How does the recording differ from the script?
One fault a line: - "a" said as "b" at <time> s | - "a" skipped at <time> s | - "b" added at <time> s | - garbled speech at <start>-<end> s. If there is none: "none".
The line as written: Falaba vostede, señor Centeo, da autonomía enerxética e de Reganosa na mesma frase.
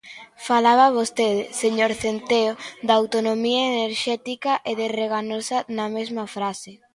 none